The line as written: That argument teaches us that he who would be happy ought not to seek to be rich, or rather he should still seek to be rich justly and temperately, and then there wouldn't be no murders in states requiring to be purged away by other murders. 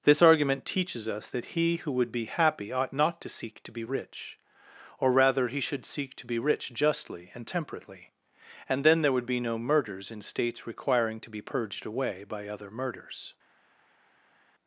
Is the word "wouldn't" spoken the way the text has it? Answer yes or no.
no